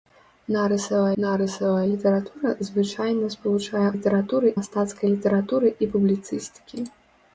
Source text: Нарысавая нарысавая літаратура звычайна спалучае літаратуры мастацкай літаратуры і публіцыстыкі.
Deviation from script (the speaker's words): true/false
false